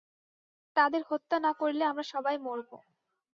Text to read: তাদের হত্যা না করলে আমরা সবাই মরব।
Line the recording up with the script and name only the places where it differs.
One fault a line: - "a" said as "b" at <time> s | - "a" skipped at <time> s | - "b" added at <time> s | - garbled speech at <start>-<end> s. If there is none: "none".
none